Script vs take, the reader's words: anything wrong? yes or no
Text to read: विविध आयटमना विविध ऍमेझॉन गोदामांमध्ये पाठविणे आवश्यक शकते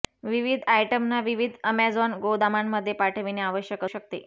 no